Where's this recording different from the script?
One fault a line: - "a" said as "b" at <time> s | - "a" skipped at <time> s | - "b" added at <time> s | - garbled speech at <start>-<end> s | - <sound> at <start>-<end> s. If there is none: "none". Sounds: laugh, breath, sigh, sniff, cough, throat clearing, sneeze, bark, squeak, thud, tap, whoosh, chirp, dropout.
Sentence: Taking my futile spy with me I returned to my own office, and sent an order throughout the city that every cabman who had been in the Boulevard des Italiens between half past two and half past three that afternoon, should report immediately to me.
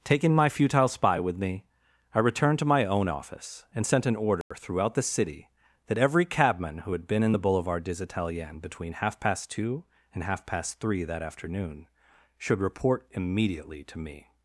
- dropout at 4.4-4.5 s